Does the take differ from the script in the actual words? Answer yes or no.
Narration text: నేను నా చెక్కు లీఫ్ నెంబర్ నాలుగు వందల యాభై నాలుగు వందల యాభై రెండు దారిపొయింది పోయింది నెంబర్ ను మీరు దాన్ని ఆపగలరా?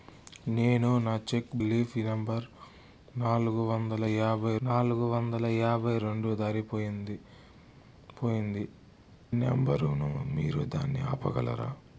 no